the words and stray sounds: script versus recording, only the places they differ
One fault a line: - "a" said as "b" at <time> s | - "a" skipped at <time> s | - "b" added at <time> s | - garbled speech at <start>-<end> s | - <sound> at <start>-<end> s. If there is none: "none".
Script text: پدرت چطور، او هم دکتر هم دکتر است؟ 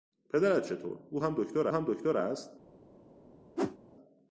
- whoosh at 3.6-3.8 s